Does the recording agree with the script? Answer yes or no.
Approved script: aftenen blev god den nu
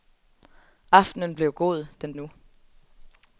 yes